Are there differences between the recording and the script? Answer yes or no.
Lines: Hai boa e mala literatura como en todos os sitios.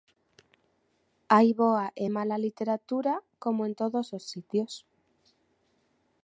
no